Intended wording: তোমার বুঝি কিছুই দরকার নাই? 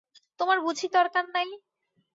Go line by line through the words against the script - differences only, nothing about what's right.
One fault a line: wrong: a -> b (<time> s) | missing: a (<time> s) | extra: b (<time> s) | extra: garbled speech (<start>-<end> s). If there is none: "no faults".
missing: কিছুই (0.9 s)